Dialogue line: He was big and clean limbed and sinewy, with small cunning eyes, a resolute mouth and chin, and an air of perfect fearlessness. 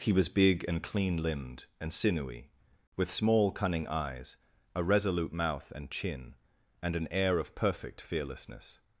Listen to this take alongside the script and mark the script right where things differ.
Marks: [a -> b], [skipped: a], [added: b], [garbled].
He was big and clean limbed and sinewy, with small cunning eyes, a resolute mouth and chin, and an air of perfect fearlessness.